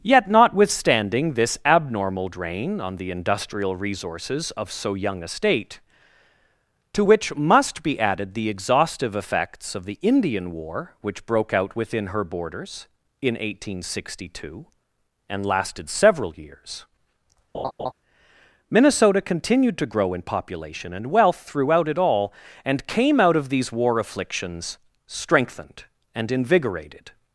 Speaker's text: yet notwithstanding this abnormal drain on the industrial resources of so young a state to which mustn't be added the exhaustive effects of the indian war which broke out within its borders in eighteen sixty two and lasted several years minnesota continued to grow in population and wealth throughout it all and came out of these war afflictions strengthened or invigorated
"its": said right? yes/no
no